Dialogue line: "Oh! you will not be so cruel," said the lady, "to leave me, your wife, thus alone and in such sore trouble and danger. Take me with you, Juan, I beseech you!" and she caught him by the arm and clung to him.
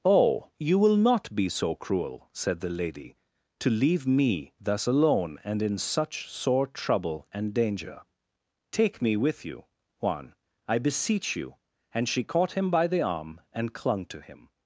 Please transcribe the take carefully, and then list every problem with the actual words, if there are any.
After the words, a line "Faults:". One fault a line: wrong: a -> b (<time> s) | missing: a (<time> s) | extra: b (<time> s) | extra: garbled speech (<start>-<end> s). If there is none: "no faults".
"Oh! you will not be so cruel," said the lady, "to leave me, thus alone and in such sore trouble and danger. Take me with you, Juan, I beseech you!" and she caught him by the arm and clung to him.
Faults:
missing: your wife (4.5 s)